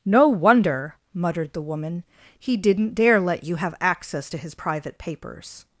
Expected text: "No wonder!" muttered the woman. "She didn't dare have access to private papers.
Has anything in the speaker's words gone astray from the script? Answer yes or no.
yes